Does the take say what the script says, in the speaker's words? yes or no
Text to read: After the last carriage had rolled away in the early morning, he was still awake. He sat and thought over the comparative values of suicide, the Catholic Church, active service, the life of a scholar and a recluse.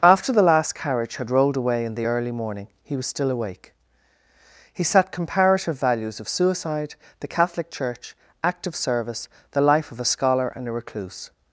no